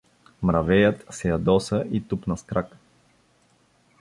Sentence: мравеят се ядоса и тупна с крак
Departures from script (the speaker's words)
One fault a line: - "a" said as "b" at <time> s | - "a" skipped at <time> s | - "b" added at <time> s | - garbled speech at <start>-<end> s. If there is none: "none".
none